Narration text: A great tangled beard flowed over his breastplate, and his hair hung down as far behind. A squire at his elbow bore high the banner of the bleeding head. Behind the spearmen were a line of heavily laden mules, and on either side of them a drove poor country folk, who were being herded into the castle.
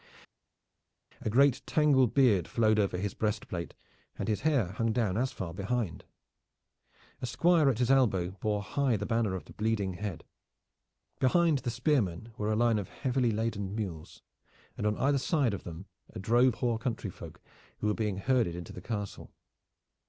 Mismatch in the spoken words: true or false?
false